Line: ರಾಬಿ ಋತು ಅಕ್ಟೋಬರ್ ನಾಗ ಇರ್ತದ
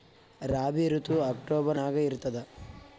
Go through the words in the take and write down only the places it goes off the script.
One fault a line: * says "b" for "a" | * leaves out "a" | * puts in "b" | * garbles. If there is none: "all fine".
all fine